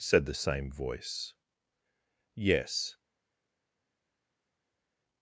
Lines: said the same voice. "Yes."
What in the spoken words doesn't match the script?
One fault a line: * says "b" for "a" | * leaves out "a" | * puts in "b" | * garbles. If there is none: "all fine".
all fine